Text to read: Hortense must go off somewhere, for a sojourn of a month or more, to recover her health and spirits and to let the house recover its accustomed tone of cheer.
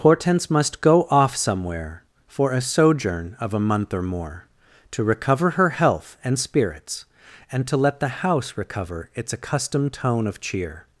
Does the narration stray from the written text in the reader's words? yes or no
no